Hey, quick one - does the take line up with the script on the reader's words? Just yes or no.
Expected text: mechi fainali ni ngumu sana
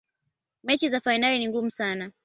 no